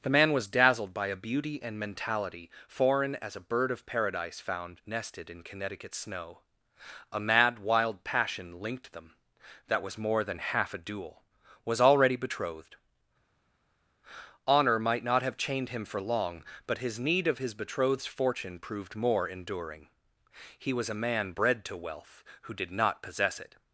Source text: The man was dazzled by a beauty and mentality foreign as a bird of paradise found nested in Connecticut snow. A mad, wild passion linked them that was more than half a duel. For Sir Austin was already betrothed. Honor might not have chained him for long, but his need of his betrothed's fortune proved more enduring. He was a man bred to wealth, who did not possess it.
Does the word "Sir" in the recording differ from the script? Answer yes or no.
yes